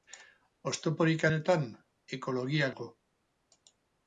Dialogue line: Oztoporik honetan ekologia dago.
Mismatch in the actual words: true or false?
false